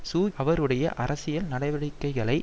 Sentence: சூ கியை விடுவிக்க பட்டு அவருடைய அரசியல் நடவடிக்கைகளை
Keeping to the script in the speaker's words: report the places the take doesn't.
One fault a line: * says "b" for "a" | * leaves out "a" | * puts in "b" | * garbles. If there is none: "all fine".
* leaves out "கியை விடுவிக்க பட்டு"